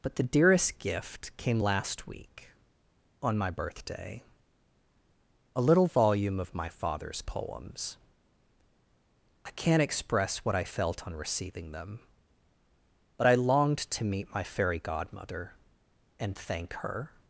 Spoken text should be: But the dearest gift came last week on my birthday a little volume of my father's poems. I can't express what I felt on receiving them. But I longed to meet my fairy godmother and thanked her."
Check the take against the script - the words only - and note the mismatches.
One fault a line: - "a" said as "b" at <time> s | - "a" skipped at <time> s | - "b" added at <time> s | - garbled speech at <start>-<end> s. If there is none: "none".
- "thanked" said as "thank" at 16.4 s